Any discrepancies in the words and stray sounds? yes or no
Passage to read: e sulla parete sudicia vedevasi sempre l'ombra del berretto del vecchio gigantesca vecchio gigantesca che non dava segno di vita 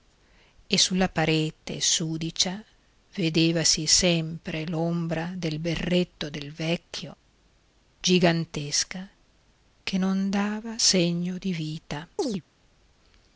yes